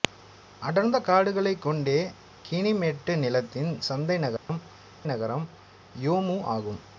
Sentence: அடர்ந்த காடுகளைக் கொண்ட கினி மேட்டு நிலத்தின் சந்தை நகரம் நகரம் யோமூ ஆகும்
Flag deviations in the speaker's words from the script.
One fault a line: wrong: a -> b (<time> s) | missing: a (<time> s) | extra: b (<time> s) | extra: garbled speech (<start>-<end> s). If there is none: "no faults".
no faults